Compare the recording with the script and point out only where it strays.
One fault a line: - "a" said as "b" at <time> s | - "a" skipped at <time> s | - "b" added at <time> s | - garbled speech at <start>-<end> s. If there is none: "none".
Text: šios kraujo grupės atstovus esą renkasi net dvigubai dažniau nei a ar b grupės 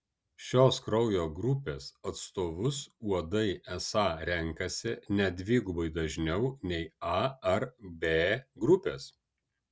- "uodai" added at 3.1 s